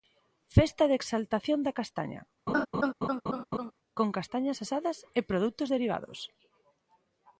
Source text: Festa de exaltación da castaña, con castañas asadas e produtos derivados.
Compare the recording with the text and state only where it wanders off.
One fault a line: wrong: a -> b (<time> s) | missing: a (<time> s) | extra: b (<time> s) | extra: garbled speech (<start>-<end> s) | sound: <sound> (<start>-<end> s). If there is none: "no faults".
sound: laugh (2.5-3.7 s)